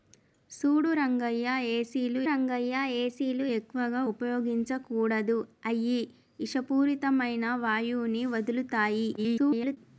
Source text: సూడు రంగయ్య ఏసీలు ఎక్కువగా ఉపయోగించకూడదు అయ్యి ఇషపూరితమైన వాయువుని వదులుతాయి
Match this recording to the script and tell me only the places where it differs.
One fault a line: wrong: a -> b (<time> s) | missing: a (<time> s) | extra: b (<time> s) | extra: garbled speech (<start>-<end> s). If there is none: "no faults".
extra: రంగయ్య ఏసీలు (2.3 s)
extra: garbled speech (9.2-9.8 s)